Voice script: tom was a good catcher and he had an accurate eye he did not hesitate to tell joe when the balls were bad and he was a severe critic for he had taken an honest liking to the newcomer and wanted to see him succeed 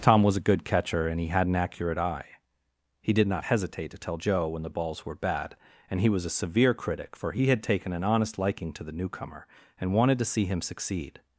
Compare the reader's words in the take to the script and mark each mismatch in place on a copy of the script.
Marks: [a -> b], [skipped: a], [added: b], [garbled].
tom was a good catcher and he had an accurate eye he did not hesitate to tell joe when the balls were bad and he was a severe critic for he had taken an honest liking to the newcomer and wanted to see him succeed